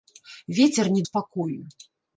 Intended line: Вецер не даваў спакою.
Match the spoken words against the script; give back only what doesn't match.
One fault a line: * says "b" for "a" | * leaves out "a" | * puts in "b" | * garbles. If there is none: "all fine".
* leaves out "даваў"